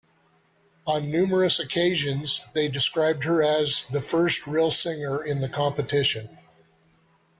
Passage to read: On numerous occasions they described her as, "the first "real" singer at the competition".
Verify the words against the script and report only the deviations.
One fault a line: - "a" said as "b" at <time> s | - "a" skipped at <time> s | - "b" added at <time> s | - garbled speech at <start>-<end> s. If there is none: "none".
- "at" said as "in" at 5.2 s